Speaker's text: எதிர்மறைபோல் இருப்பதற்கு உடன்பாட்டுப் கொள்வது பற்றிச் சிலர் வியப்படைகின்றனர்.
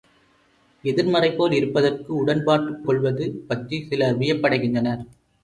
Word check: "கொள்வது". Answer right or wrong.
right